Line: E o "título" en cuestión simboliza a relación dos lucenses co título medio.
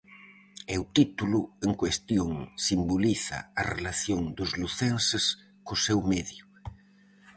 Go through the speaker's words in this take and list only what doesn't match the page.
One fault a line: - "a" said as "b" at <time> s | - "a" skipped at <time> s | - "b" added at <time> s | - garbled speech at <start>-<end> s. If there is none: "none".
- "título" said as "seu" at 5.8 s